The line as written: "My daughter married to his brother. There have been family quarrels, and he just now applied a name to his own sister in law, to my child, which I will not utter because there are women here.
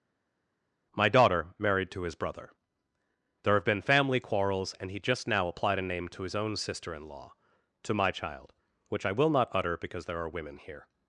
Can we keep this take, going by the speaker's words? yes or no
yes